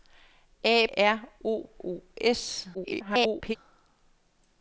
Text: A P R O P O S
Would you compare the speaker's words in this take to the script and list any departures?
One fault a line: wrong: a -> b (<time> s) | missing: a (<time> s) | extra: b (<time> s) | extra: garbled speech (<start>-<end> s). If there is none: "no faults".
missing: P (0.9 s)
missing: P (1.7 s)
extra: garbled speech (2.7-3.6 s)